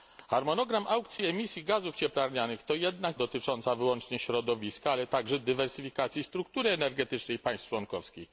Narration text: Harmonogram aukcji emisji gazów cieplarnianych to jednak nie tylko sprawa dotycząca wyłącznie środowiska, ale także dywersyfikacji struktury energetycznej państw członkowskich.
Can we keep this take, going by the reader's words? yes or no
no